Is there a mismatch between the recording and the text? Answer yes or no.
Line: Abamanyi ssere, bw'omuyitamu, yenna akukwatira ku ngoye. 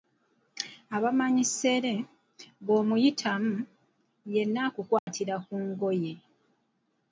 no